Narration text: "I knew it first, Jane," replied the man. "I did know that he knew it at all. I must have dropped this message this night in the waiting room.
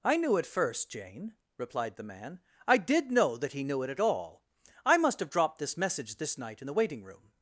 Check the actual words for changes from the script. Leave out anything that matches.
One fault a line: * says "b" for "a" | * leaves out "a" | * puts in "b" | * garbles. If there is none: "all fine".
all fine